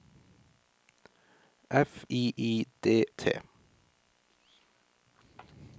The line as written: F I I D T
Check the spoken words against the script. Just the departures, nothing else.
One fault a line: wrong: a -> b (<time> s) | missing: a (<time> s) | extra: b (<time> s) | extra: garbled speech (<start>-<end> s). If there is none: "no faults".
no faults